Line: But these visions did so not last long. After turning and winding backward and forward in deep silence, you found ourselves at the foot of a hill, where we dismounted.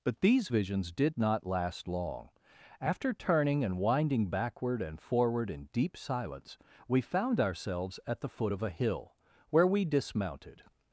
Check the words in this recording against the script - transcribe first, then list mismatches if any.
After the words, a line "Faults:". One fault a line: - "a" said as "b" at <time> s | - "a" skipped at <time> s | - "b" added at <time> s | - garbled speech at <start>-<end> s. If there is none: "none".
But these visions did not last long. After turning and winding backward and forward in deep silence, we found ourselves at the foot of a hill, where we dismounted.
Faults:
- "so" skipped at 1.2 s
- "you" said as "we" at 6.9 s